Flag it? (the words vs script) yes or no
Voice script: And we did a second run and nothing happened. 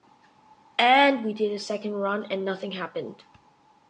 no